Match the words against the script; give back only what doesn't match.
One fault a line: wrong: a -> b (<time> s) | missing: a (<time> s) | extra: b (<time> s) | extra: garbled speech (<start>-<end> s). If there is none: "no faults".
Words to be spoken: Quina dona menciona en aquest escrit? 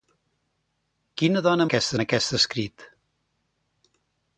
wrong: menciona -> aquest (1.7 s)